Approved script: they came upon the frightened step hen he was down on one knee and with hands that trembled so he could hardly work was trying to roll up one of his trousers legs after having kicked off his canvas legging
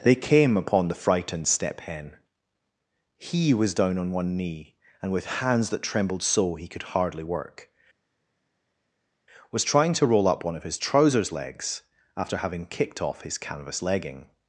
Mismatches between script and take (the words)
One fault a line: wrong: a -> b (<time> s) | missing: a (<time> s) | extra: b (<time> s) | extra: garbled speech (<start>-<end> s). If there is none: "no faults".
no faults